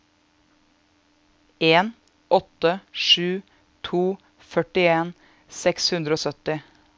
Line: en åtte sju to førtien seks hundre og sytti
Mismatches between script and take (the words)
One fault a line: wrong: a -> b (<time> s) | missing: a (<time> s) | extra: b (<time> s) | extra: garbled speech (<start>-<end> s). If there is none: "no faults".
no faults